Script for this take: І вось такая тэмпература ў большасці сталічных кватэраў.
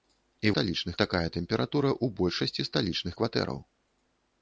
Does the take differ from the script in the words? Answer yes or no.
yes